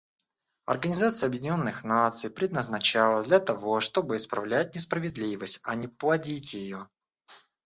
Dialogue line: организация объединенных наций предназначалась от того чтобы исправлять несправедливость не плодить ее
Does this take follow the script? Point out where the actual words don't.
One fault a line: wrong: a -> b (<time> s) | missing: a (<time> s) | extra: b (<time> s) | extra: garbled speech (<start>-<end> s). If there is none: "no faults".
wrong: от -> для (3.3 s)
extra: а (5.6 s)